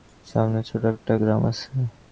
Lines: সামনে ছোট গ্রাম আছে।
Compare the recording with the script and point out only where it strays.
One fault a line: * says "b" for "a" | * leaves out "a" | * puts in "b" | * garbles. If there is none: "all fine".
* puts in "একটা"